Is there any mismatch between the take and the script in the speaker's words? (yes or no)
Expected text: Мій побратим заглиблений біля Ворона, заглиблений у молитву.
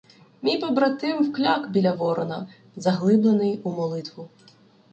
yes